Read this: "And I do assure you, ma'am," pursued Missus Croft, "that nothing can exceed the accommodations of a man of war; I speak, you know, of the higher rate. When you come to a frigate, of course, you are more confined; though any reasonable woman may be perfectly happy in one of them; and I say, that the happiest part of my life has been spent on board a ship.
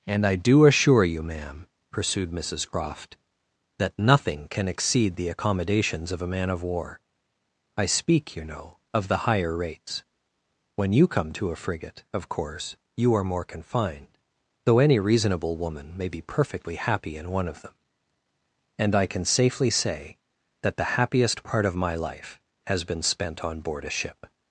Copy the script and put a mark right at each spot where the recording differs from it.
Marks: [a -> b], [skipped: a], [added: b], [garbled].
"And I do assure you, ma'am," pursued Missus Croft, "that nothing can exceed the accommodations of a man of war; I speak, you know, of the higher [rate. -> rates] When you come to a frigate, of course, you are more confined; though any reasonable woman may be perfectly happy in one of them; and I [added: can safely] say, that the happiest part of my life has been spent on board a ship.